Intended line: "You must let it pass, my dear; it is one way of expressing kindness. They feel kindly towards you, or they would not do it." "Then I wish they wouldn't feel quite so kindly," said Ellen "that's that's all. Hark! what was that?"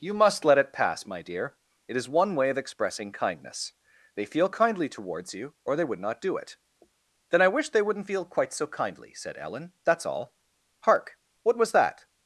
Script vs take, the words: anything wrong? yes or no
yes